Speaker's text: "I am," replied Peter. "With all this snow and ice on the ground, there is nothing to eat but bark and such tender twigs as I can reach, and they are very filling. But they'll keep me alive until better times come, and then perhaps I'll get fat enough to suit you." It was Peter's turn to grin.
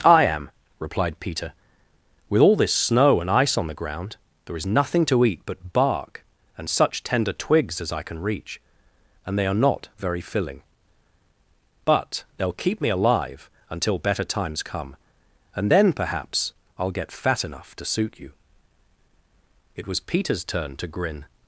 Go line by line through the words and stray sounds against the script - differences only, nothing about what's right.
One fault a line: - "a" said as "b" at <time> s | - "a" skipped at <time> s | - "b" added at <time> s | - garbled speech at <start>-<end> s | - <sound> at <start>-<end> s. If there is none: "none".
- "not" added at 9.5 s